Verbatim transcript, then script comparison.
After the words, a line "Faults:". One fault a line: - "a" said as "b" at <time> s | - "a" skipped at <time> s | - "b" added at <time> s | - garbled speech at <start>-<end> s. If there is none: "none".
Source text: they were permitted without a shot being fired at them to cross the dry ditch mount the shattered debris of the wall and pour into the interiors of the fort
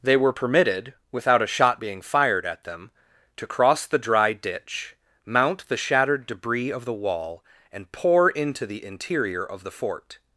they were permitted without a shot being fired at them to cross the dry ditch mount the shattered debris of the wall and pour into the interior of the fort
Faults:
- "interiors" said as "interior" at 8.8 s